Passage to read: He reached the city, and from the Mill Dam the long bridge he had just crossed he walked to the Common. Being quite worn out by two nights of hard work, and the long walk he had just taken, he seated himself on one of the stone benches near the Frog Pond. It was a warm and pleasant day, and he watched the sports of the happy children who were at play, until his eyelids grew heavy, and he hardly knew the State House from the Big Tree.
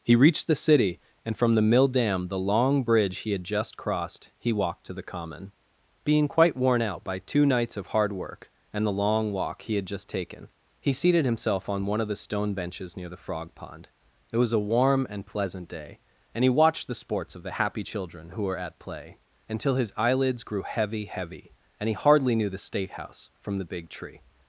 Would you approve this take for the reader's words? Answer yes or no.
no